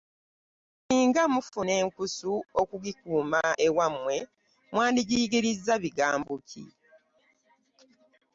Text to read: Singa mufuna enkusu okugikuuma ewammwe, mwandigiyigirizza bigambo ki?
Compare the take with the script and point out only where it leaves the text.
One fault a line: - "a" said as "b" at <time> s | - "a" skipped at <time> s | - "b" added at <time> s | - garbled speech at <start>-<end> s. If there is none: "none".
none